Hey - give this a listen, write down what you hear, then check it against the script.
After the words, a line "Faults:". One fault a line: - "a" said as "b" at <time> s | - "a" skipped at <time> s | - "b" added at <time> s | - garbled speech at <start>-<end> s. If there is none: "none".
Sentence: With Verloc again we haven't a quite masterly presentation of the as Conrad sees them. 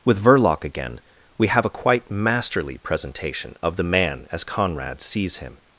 With Verloc again we have a quite masterly presentation of the man as Conrad sees him.
Faults:
- "haven't" said as "have" at 1.5 s
- "man" added at 3.8 s
- "them" said as "him" at 5.4 s